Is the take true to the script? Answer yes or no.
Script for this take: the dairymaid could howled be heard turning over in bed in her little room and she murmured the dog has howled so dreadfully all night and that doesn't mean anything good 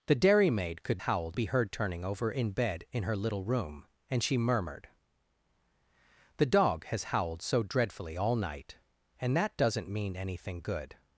yes